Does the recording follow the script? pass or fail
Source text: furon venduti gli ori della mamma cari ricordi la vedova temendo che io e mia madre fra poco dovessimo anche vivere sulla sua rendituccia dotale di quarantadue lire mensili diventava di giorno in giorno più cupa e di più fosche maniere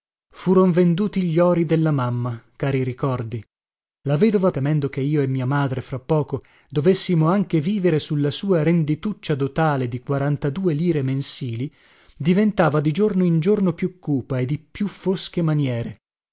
pass